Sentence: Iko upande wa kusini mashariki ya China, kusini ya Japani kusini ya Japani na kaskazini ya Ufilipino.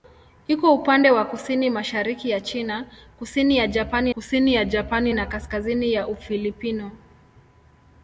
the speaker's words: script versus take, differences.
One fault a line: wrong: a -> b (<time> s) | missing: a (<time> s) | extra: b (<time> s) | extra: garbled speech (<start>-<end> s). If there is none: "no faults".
no faults